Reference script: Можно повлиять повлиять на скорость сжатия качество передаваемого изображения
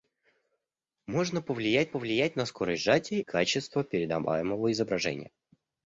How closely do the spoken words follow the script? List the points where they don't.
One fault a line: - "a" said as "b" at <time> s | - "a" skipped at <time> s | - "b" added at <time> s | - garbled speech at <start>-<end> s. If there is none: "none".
none